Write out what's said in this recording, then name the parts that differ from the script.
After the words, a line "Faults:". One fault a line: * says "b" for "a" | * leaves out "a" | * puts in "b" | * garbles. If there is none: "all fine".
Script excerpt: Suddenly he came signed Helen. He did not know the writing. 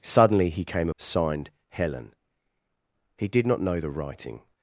Suddenly he came signed Helen. He did not know the writing.
Faults:
all fine